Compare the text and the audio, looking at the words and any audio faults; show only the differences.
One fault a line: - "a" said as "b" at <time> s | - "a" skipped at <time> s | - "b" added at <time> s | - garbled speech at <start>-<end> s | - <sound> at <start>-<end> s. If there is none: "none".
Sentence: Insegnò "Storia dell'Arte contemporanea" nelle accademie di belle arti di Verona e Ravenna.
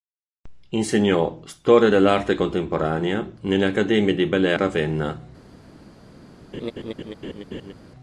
- "arti di Verona" skipped at 4.5 s
- laugh at 6.5-7.7 s